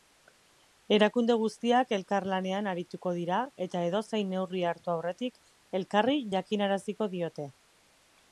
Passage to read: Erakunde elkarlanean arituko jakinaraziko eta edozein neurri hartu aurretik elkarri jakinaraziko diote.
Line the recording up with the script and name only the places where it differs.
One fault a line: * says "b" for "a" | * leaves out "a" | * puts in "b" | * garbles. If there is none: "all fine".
* puts in "guztiak"
* says "dira" for "jakinaraziko"